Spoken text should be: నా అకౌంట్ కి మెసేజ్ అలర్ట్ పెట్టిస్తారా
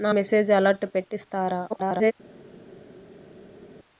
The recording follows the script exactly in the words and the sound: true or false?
false